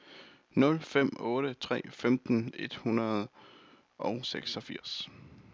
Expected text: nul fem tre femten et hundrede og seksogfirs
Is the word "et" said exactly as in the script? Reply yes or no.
yes